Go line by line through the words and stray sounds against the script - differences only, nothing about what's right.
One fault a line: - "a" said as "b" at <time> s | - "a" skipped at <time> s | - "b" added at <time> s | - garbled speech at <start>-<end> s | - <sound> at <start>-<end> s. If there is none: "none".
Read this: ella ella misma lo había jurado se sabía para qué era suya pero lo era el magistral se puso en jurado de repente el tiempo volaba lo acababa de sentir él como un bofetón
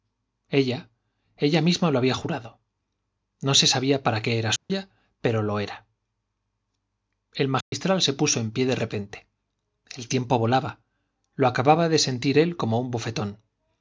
- "no" added at 3.4 s
- dropout at 4.6-4.7 s
- dropout at 7.6-7.7 s
- "jurado" said as "pie" at 8.5 s